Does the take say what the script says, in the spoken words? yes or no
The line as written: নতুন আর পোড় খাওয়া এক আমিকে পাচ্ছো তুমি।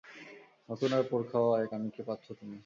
yes